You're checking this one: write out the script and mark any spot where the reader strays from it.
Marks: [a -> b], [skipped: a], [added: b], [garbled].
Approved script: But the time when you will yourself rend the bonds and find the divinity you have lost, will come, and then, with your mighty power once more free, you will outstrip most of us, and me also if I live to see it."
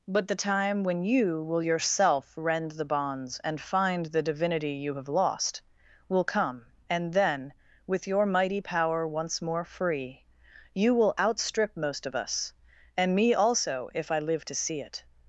But the time when you will yourself rend the bonds and find the divinity you have lost, will come, and then, with your mighty power once more free, you will outstrip most of us, and me also if I live to see it."